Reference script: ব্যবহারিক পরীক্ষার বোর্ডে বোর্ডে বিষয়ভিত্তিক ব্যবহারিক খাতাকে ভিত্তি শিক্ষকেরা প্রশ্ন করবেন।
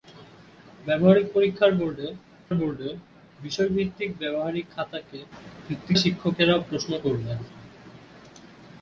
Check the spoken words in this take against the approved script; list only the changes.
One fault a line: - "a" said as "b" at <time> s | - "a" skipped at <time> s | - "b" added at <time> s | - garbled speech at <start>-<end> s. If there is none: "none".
none